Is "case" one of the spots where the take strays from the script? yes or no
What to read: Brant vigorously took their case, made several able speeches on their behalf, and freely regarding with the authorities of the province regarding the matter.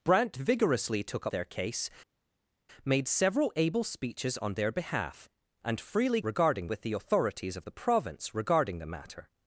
no